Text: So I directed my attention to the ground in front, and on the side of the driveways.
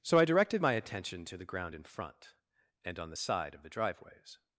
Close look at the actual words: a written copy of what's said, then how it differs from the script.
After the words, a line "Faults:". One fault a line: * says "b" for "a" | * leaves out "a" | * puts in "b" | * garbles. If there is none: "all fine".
So I directed my attention to the ground in front, and on the side of the driveways.
Faults:
all fine